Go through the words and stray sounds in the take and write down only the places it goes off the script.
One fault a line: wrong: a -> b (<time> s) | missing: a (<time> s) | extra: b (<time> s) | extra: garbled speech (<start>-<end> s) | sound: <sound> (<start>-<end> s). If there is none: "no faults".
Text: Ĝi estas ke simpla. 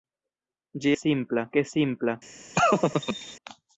wrong: estas -> simpla (1.0 s)
sound: laugh (2.5-3.4 s)